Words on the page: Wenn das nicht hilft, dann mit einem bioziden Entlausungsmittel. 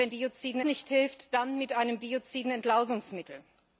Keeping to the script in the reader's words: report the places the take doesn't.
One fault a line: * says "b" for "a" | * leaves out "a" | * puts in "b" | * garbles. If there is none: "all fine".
* says "bioziden" for "das"